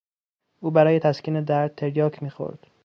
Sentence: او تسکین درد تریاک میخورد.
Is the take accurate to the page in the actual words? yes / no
no